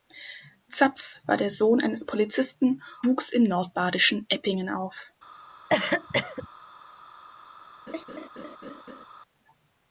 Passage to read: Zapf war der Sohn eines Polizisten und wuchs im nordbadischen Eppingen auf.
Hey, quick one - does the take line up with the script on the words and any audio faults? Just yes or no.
no